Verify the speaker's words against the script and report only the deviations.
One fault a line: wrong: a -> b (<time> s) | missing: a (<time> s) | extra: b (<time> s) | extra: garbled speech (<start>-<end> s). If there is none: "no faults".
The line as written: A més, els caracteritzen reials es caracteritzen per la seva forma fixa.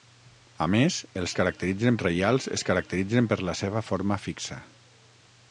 no faults